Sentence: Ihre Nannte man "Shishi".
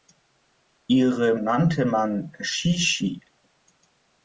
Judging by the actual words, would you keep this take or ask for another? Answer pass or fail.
pass